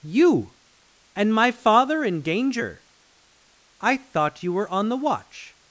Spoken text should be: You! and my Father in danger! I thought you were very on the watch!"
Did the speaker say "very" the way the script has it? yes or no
no